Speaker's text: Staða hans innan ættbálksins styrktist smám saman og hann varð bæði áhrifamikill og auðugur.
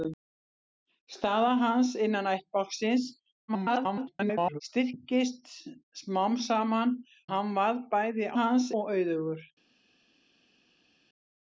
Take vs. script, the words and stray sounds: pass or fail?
fail